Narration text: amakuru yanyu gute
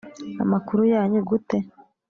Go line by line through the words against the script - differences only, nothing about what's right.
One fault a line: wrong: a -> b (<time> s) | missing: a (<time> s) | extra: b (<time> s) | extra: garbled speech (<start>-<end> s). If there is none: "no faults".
no faults